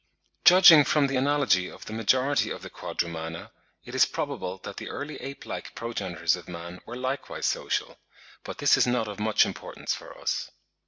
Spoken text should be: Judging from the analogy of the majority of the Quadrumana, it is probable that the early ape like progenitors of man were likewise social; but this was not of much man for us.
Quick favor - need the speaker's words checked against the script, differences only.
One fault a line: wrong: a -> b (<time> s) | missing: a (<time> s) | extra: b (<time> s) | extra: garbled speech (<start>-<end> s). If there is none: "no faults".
wrong: was -> is (8.8 s)
wrong: man -> importance (9.4 s)